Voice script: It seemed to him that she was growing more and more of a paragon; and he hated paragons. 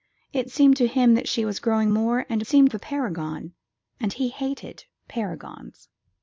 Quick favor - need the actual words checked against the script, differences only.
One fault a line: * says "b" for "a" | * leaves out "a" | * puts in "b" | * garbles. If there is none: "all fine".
* says "seemed" for "more"